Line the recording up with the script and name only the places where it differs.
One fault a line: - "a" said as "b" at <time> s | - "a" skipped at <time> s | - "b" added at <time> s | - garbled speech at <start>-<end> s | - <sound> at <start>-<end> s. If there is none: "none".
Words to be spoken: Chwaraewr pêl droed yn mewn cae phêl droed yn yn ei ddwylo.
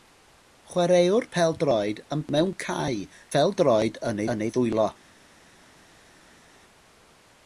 none